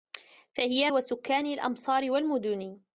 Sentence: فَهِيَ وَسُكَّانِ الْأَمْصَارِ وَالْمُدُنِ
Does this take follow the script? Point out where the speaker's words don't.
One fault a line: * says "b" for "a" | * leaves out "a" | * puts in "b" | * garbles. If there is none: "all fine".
all fine